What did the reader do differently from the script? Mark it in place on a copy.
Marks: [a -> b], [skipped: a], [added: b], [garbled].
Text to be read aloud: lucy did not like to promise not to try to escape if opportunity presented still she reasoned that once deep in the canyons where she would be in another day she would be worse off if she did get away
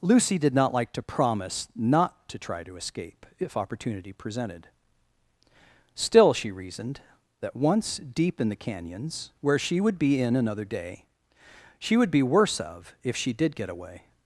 lucy did not like to promise not to try to escape if opportunity presented still she reasoned that once deep in the canyons where she would be in another day she would be worse [off -> of] if she did get away